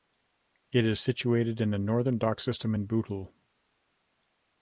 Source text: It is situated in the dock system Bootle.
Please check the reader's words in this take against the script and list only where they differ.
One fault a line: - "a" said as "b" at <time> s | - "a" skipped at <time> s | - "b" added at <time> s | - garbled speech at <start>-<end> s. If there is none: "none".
- "northern" added at 1.8 s
- "in" added at 2.7 s